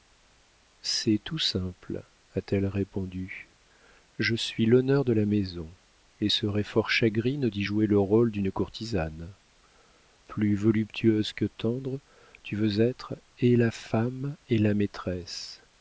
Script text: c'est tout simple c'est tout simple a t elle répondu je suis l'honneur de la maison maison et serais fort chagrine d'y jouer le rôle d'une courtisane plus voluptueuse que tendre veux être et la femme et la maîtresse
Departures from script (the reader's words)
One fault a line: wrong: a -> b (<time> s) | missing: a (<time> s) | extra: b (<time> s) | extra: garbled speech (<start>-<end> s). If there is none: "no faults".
missing: c'est tout simple (2.0 s)
missing: maison (5.7 s)
extra: tu (12.4 s)